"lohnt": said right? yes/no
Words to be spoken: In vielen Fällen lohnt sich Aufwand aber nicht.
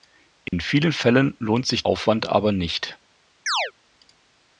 yes